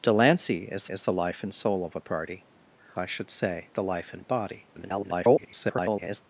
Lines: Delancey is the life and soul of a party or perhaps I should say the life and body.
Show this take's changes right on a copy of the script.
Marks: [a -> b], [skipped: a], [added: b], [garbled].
Delancey is [added: is] the life and soul of a party [skipped: or perhaps] I should say the life and body. [garbled]